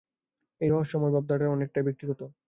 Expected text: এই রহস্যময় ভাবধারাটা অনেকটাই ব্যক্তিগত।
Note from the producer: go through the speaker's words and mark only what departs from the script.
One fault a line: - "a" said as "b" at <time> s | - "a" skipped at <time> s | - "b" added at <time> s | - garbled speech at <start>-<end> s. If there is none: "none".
none